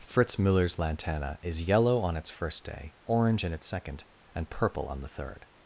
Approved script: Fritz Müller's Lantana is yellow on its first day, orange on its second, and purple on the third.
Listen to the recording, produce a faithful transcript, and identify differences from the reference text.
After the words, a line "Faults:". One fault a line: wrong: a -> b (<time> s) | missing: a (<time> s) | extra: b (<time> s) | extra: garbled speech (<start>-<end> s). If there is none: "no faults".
Fritz Müller's Lantana is yellow on its first day, orange in its second, and purple on the third.
Faults:
wrong: on -> in (3.4 s)